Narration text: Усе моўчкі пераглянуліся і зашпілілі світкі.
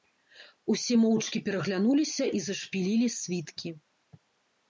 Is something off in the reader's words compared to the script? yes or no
no